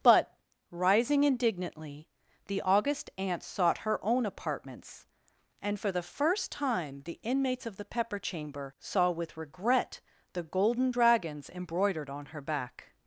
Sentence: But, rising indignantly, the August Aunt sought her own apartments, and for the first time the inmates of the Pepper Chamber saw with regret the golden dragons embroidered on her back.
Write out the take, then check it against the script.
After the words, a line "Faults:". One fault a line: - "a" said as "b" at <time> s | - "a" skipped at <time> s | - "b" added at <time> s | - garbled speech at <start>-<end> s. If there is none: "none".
But, rising indignantly, the August Aunt sought her own apartments, and for the first time the inmates of the Pepper Chamber saw with regret the golden dragons embroidered on her back.
Faults:
none